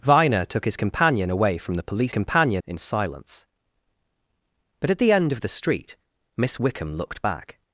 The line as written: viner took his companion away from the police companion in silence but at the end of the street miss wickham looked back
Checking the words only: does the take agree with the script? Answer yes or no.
yes